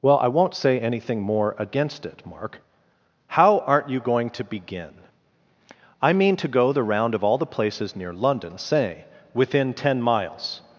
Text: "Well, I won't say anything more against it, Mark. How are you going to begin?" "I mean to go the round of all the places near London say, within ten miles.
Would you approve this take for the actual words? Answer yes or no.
no